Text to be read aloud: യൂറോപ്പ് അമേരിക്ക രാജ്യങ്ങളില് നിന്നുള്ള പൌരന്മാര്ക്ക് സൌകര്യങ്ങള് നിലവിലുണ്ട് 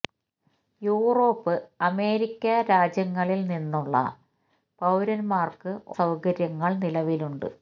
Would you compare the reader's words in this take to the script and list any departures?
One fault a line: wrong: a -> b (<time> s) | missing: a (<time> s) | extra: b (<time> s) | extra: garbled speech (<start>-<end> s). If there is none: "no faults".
no faults